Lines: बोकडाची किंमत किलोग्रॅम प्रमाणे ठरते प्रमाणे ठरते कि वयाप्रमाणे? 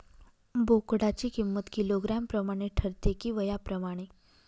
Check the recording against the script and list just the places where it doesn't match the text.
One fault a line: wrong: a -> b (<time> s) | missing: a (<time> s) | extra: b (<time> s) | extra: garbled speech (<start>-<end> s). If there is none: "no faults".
missing: प्रमाणे ठरते (3.1 s)